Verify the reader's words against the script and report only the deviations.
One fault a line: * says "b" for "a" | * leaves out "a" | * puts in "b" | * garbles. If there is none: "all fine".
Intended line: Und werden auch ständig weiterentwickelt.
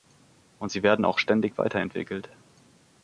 * puts in "sie"